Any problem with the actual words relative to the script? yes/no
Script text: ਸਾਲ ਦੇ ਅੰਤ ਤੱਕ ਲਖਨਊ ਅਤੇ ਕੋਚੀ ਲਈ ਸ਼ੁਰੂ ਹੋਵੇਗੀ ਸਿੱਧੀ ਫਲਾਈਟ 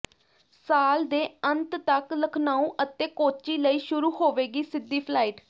no